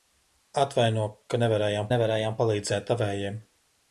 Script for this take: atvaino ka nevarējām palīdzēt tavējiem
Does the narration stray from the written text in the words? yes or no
yes